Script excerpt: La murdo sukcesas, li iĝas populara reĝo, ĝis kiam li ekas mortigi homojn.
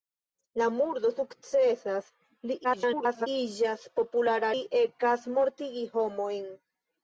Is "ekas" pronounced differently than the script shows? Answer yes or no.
no